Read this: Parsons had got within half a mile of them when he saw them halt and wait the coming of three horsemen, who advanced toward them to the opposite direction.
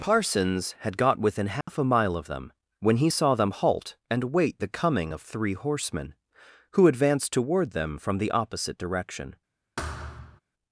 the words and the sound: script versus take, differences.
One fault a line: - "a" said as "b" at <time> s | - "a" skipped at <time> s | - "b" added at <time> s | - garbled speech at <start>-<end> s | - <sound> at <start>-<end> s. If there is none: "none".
- dropout at 1.6-1.7 s
- "to" said as "from" at 8.0 s
- thud at 9.8-10.4 s